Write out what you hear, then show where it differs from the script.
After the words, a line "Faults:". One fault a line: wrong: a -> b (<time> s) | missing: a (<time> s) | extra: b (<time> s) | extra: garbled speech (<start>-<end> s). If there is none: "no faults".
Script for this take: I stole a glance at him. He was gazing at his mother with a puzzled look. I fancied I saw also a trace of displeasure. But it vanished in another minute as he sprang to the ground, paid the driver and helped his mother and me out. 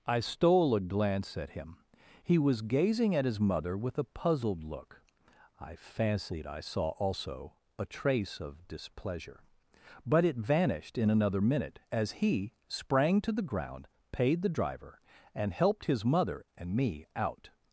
I stole a glance at him. He was gazing at his mother with a puzzled look. I fancied I saw also a trace of displeasure. But it vanished in another minute as he sprang to the ground, paid the driver and helped his mother and me out.
Faults:
no faults